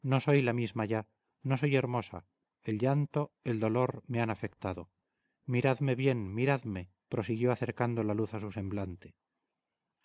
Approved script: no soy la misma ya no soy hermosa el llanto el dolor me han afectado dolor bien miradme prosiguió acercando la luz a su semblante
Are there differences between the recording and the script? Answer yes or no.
yes